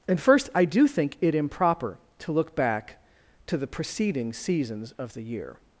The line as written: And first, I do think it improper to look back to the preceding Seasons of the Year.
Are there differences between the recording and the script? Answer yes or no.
no